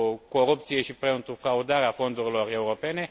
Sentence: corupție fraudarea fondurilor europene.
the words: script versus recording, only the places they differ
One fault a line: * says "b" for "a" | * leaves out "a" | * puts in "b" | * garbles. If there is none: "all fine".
* puts in "și pentru"